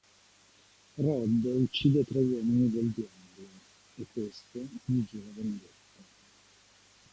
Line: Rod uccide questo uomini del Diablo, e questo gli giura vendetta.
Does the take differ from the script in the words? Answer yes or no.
yes